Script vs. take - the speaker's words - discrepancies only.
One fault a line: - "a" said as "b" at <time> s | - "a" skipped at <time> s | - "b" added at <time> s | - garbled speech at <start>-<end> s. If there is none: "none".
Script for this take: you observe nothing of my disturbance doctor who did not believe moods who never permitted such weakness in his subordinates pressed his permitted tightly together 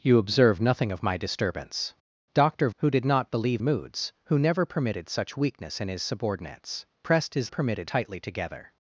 none